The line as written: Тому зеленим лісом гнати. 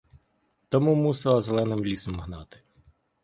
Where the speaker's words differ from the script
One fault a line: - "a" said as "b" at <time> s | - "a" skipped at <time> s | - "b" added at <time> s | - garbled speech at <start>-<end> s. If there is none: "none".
- "мусила" added at 0.9 s